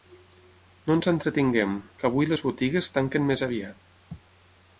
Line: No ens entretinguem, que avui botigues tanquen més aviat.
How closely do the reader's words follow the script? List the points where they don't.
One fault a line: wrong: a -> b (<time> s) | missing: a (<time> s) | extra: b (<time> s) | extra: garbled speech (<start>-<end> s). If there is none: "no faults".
extra: les (2.3 s)